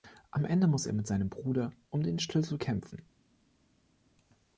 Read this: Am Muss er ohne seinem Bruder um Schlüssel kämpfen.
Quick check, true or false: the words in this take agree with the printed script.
false